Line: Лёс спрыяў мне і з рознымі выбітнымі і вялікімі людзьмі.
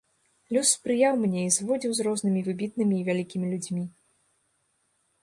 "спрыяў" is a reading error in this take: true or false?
false